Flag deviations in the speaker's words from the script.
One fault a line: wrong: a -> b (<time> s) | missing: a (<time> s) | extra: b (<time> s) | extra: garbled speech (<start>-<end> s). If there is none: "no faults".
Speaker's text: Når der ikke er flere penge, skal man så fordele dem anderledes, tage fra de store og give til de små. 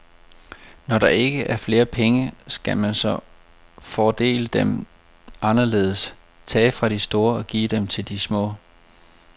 no faults